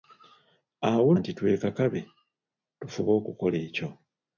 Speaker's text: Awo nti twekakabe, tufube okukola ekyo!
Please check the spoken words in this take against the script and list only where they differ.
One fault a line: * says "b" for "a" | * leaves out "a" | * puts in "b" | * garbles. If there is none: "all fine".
all fine